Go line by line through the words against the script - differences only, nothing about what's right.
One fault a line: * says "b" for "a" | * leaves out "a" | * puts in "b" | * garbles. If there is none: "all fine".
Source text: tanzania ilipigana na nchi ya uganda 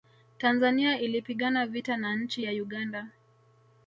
* puts in "vita"